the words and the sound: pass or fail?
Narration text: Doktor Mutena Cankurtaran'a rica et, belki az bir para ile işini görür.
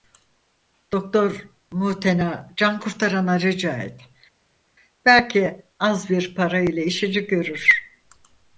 pass